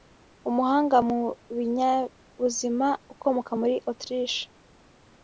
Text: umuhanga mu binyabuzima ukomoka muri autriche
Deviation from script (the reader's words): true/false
false